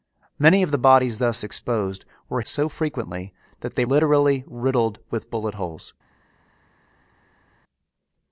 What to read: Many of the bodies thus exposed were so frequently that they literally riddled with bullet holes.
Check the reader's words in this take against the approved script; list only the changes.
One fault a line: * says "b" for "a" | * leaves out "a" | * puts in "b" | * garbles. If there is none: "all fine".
all fine